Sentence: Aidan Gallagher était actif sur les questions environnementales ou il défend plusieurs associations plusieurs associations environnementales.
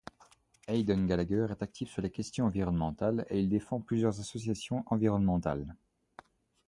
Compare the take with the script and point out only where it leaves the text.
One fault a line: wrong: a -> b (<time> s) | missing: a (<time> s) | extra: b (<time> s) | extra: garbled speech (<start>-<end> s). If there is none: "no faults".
wrong: était -> est (1.5 s)
wrong: ou -> et (3.3 s)
missing: plusieurs associations (4.9 s)